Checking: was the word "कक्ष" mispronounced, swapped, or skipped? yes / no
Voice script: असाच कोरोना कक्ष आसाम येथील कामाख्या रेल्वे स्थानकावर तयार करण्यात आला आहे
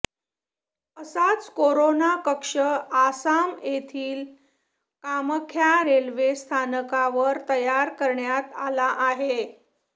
no